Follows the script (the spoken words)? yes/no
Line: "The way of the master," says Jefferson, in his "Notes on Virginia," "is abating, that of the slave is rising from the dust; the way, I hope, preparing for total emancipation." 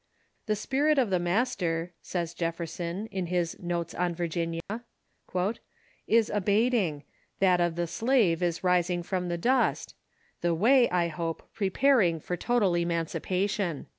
no